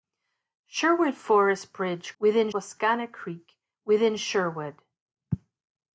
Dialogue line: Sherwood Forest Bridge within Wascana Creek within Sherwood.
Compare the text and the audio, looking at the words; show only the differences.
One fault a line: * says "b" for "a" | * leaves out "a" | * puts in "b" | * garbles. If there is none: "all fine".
all fine